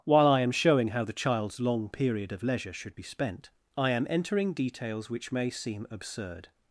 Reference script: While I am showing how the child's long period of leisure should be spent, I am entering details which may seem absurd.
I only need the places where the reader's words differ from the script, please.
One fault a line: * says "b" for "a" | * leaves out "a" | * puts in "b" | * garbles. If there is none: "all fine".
all fine